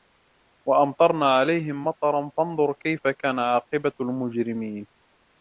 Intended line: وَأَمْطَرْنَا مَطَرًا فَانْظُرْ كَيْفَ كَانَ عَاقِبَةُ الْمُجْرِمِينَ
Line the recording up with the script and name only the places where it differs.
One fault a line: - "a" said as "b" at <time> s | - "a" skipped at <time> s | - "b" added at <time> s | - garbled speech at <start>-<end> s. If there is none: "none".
- "عَلَيْهِمْ" added at 1.2 s